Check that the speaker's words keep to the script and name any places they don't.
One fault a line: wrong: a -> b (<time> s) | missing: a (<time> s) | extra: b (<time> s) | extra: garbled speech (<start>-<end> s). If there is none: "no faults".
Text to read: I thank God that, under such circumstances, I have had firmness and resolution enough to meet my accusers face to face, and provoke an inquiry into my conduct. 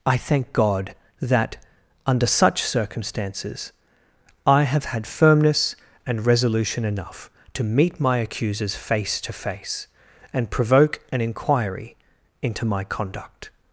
no faults